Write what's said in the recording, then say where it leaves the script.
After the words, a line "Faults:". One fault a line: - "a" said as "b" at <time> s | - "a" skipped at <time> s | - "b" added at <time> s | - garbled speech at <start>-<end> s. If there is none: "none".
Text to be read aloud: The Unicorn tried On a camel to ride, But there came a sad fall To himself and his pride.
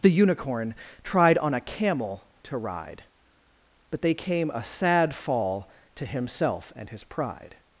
The Unicorn tried On a camel to ride, But they came a sad fall To himself and his pride.
Faults:
- "there" said as "they" at 4.0 s